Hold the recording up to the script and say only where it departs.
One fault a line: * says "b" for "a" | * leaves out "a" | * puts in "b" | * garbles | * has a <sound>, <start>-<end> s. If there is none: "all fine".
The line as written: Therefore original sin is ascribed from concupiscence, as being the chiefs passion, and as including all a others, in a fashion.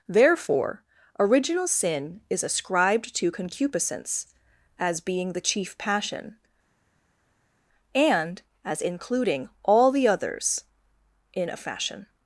* says "to" for "from"
* says "chief" for "chiefs"
* says "the" for "a"